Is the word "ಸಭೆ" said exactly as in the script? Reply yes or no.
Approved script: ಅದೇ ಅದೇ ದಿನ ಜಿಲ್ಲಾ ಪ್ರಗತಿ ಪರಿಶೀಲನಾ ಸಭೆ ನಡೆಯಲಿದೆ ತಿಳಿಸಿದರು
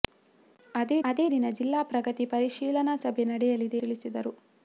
yes